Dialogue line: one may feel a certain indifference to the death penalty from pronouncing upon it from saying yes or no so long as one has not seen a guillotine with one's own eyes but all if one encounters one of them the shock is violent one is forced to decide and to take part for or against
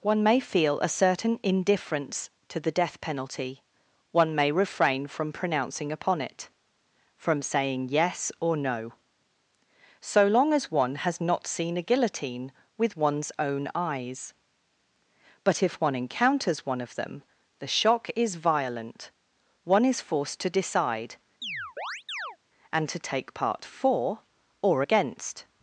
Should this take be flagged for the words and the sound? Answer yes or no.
yes